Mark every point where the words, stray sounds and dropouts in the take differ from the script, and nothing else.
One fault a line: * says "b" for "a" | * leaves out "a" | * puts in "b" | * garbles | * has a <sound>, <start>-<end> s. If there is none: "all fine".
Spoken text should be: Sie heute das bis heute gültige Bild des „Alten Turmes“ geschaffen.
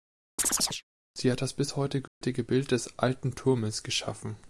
* has a chirp, 0.4-0.8 s
* says "hat" for "heute"
* has a dropout, 2.1-2.2 s